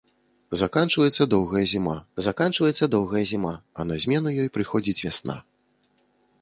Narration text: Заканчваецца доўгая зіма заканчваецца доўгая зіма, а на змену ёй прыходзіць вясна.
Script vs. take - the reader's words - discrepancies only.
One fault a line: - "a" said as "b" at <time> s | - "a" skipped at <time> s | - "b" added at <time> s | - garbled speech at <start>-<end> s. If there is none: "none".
none